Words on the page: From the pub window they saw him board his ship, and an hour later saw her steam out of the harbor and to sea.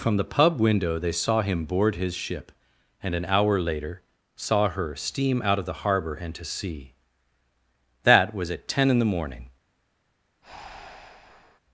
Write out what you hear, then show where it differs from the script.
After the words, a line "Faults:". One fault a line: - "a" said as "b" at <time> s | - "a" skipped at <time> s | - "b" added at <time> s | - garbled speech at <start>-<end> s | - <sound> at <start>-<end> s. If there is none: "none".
From the pub window they saw him board his ship, and an hour later saw her steam out of the harbor and to sea. That was at ten in the morning
Faults:
- "That was at ten in the morning" added at 8.0 s
- breath at 10.4-11.6 s